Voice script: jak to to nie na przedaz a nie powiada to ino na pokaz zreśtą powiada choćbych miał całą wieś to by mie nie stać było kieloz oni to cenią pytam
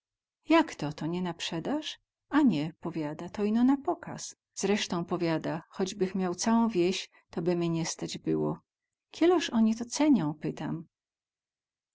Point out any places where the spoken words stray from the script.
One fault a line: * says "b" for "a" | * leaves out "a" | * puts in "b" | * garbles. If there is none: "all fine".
all fine